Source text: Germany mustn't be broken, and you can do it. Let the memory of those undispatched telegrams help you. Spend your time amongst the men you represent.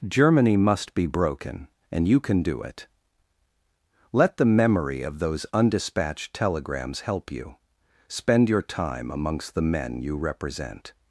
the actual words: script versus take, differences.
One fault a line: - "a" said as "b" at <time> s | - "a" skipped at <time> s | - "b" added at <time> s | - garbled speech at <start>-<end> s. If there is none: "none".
- "mustn't" said as "must" at 0.6 s